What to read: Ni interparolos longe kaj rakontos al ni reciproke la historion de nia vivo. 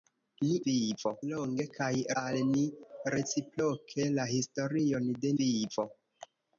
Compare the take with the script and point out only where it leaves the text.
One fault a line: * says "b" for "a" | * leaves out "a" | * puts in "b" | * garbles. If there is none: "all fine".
* says "vivo" for "interparolos"
* leaves out "rakontos"
* leaves out "nia"